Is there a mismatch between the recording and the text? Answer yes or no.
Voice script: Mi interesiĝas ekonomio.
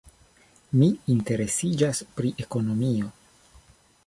yes